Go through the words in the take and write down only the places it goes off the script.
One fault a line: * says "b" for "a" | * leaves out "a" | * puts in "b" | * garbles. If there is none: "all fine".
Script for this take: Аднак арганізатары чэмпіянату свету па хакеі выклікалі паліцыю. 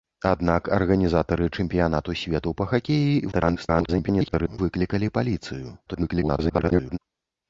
* garbles
* garbles